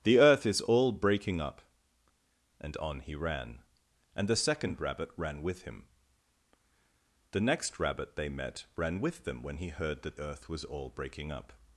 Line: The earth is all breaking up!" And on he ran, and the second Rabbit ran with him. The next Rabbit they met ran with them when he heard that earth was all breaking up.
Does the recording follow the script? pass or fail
pass